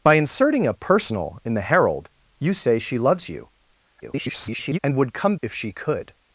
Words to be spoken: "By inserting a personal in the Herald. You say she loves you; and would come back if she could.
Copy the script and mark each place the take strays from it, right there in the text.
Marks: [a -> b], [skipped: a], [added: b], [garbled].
"By inserting a personal in the Herald. You say she loves you; [garbled] and would come [skipped: back] if she could.